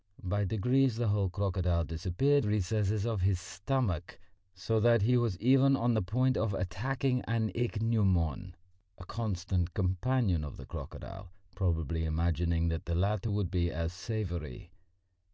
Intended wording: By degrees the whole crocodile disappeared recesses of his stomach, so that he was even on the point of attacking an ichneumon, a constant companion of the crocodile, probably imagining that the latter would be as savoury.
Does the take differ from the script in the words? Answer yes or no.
no